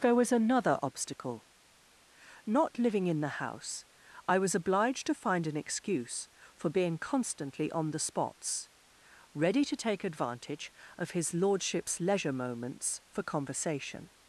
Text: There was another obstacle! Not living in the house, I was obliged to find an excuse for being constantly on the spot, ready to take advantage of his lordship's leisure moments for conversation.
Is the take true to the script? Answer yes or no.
no